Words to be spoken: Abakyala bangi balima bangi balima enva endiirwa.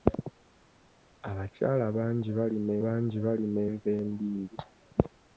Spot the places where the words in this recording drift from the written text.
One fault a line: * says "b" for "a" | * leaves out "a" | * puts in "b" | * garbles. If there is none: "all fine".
all fine